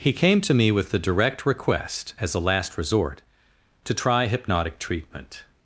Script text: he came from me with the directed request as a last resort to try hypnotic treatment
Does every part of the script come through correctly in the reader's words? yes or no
no